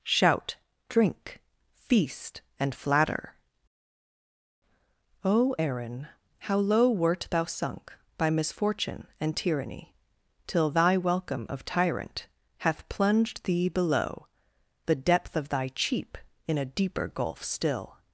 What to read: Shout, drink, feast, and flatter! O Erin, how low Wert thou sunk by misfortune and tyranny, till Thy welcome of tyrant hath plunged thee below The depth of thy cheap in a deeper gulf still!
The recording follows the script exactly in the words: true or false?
true